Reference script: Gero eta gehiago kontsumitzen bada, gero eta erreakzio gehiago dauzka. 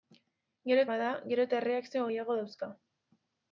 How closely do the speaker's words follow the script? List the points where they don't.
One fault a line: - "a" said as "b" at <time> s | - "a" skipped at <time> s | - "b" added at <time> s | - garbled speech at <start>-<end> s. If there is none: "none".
- "eta gehiago kontsumitzen" skipped at 0.8 s